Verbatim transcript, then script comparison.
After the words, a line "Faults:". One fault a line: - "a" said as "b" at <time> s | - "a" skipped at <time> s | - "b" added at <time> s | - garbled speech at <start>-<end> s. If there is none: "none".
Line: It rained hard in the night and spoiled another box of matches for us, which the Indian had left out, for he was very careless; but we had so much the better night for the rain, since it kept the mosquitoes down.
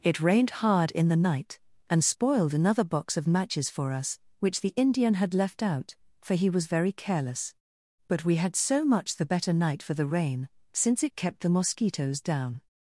It rained hard in the night and spoiled another box of matches for us, which the Indian had left out, for he was very careless; but we had so much the better night for the rain, since it kept the mosquitoes down.
Faults:
none